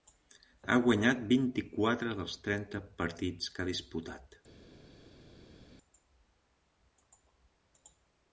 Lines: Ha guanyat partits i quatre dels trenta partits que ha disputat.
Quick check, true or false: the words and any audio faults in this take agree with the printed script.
false